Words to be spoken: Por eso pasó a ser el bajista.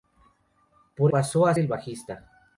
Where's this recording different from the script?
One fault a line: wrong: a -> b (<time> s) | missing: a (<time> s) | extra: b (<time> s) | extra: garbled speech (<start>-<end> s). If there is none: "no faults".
missing: eso (1.1 s)
missing: ser (1.5 s)